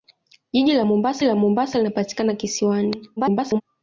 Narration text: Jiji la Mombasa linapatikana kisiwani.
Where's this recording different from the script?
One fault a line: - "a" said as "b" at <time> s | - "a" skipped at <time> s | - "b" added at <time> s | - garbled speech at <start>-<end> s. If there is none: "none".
- "la Mombasa" added at 1.2 s
- garbled speech at 3.2-3.6 s